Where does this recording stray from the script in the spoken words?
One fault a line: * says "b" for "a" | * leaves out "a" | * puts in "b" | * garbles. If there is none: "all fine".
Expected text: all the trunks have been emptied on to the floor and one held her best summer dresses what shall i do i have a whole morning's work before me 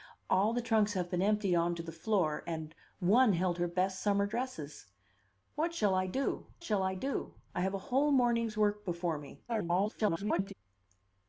* puts in "shall i do"
* garbles